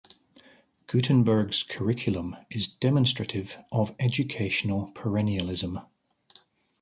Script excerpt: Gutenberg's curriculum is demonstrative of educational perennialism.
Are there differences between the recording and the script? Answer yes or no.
no